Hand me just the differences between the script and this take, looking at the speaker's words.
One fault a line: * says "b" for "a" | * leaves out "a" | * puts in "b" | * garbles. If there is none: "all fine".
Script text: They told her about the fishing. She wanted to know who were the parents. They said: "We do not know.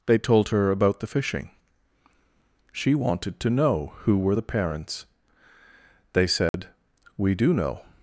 * leaves out "not"